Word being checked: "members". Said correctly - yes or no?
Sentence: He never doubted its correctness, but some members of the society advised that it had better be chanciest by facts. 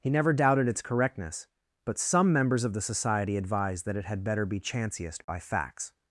yes